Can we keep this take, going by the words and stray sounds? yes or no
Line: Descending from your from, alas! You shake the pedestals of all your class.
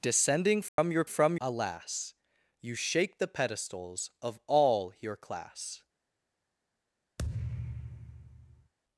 no